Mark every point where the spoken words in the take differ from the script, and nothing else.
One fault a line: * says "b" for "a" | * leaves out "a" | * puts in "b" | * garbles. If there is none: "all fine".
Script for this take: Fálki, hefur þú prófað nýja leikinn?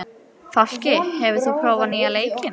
all fine